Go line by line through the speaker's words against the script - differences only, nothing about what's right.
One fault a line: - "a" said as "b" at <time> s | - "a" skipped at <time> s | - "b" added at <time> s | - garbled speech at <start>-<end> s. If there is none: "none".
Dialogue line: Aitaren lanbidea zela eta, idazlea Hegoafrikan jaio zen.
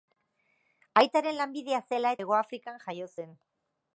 - "eta idazlea" skipped at 2.1 s